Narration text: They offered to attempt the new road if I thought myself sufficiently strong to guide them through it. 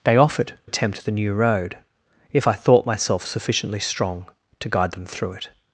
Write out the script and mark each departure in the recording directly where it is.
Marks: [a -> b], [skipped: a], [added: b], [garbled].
They offered [skipped: to] attempt the new road if I thought myself sufficiently strong to guide them through it.